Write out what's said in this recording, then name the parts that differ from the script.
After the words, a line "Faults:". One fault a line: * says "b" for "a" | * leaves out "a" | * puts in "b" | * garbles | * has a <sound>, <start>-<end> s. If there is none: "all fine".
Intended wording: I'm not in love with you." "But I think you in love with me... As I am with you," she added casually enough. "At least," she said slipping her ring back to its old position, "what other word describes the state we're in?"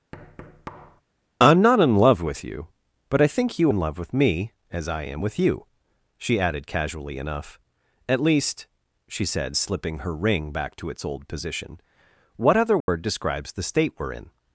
I'm not in love with you." "But I think you in love with me... As I am with you," she added casually enough. "At least," she said slipping her ring back to its old position, "what other word describes the state we're in?"
Faults:
* has a thud, 0.1-1.0 s
* has a dropout, 12.8-12.9 s